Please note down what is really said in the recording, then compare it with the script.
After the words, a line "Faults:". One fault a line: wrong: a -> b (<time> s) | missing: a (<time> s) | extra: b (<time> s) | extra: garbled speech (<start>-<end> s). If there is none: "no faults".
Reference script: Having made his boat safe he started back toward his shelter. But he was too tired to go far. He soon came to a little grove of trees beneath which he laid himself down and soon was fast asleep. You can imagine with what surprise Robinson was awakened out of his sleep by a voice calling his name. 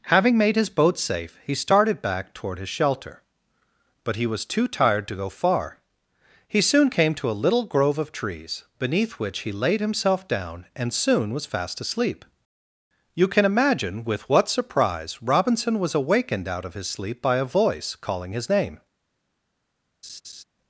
Having made his boat safe he started back toward his shelter. But he was too tired to go far. He soon came to a little grove of trees beneath which he laid himself down and soon was fast asleep. You can imagine with what surprise Robinson was awakened out of his sleep by a voice calling his name.
Faults:
no faults